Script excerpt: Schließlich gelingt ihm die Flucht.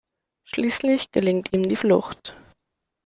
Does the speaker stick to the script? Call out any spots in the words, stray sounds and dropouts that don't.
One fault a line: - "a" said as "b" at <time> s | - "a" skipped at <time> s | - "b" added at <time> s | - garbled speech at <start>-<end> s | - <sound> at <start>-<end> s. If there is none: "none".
none